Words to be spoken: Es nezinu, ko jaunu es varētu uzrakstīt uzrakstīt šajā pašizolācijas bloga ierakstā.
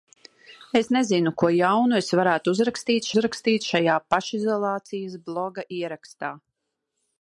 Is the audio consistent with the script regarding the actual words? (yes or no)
yes